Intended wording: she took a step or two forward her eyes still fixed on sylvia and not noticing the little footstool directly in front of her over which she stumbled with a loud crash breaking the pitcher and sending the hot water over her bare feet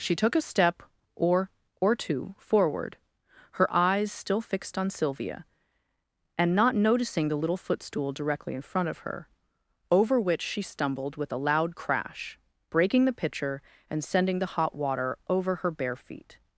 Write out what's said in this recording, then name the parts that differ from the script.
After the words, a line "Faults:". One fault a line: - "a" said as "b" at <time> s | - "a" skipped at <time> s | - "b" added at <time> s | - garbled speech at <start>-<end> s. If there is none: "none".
she took a step or or two forward her eyes still fixed on sylvia and not noticing the little footstool directly in front of her over which she stumbled with a loud crash breaking the pitcher and sending the hot water over her bare feet
Faults:
- "or" added at 1.8 s